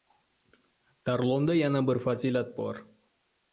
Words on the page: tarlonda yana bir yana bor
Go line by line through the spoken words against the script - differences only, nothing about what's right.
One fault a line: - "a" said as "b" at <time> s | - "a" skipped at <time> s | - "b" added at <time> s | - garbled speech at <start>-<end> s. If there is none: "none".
- "yana" said as "fazilat" at 2.0 s